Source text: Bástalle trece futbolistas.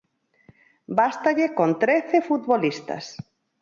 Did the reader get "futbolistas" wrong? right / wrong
right